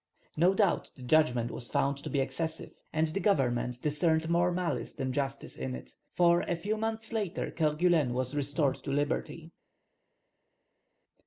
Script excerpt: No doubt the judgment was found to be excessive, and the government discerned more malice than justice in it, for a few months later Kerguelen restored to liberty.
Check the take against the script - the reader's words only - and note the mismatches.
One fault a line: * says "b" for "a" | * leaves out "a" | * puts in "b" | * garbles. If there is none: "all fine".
* puts in "was"